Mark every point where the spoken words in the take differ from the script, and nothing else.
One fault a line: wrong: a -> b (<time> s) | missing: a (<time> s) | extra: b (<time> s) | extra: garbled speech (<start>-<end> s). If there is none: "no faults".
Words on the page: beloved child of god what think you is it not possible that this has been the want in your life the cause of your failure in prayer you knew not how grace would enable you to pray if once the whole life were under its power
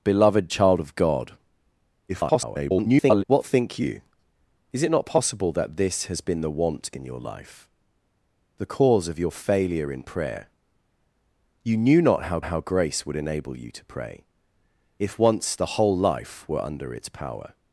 extra: garbled speech (2.1-3.2 s)
extra: how (12.4 s)